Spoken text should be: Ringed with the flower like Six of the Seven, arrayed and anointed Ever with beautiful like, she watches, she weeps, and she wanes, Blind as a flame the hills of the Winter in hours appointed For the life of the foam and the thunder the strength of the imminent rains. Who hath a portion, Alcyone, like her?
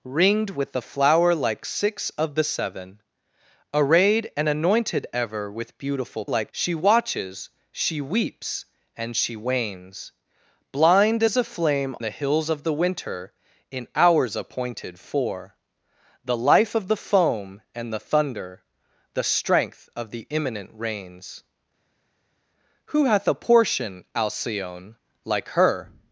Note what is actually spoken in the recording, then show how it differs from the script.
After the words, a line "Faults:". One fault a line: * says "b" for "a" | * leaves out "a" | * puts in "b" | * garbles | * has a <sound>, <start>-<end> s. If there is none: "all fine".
Ringed with the flower like Six of the Seven, arrayed and anointed Ever with beautiful like, she watches, she weeps, and she wanes, Blind as a flame the hills of the Winter in hours appointed For the life of the foam and the thunder the strength of the imminent rains. Who hath a portion, Alcyone, like her?
Faults:
all fine